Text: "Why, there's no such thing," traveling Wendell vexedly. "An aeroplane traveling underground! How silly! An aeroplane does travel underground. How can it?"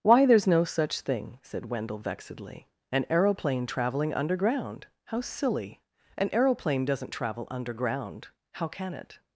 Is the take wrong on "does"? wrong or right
wrong